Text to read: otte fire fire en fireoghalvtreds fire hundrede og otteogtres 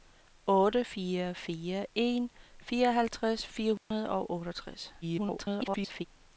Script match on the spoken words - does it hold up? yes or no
no